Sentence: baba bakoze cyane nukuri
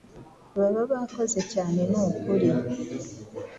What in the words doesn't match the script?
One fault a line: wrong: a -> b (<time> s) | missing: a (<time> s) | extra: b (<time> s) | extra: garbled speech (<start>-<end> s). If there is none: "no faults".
no faults